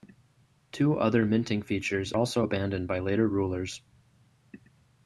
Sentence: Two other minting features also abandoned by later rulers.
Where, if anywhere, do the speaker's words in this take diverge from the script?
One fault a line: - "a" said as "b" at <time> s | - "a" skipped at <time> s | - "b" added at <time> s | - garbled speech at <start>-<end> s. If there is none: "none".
none